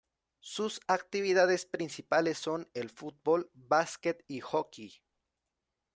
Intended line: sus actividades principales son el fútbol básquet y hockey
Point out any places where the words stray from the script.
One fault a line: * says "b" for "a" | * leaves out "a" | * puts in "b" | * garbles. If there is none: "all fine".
all fine